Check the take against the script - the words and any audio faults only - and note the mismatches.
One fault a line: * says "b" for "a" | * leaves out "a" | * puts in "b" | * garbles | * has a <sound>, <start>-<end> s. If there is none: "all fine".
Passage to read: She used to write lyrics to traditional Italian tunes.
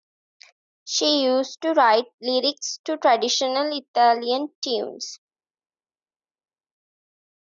all fine